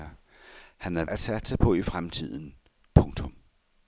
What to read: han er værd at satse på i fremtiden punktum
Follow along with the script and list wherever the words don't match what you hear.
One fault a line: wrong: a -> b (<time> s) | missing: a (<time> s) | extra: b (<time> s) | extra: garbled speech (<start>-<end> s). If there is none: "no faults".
missing: værd (1.1 s)